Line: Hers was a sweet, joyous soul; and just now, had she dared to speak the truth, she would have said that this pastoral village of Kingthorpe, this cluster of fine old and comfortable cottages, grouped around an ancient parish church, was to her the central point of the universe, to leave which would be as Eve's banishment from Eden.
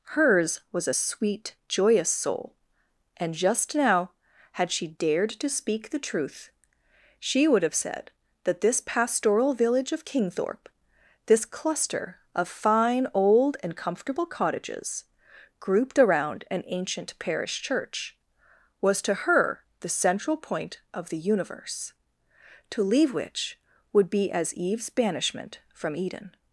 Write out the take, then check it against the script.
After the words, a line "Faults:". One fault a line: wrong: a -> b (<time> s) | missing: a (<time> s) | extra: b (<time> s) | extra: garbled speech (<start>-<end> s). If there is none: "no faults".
Hers was a sweet, joyous soul; and just now, had she dared to speak the truth, she would have said that this pastoral village of Kingthorpe, this cluster of fine old and comfortable cottages, grouped around an ancient parish church, was to her the central point of the universe, to leave which would be as Eve's banishment from Eden.
Faults:
no faults